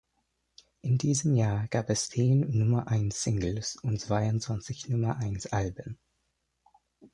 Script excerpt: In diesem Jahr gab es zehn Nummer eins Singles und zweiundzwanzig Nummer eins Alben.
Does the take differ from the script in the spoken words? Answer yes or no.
no